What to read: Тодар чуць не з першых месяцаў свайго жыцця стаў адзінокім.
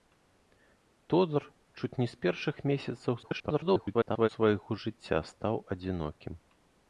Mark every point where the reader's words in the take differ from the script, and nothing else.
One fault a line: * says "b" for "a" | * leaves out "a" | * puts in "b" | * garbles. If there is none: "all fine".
* garbles